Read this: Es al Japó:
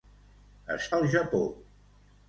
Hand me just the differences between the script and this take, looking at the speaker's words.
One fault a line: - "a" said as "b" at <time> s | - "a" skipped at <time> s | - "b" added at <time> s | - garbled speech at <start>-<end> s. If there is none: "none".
none